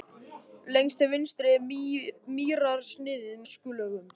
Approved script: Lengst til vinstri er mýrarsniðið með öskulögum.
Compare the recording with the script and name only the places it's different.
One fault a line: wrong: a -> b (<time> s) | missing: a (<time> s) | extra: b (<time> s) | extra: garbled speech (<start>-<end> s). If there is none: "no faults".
missing: með (3.4 s)